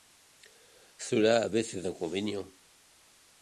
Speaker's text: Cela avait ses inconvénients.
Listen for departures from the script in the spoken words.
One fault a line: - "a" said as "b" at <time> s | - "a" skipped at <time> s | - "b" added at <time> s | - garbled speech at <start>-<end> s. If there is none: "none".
none